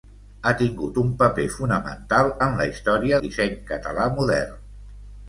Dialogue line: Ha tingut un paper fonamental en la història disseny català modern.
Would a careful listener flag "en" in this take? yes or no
no